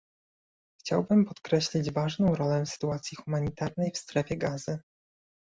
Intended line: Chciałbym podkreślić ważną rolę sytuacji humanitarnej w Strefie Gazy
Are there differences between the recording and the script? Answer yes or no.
no